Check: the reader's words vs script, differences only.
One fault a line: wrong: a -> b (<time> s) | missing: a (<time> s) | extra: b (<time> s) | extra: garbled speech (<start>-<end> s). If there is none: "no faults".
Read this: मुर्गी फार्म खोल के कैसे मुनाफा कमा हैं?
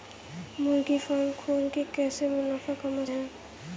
no faults